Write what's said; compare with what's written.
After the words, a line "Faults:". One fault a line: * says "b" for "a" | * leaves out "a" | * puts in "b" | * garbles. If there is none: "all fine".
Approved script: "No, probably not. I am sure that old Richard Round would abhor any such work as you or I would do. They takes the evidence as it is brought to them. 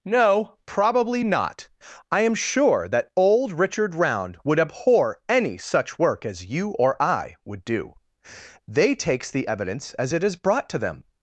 "No, probably not. I am sure that old Richard Round would abhor any such work as you or I would do. They takes the evidence as it is brought to them.
Faults:
all fine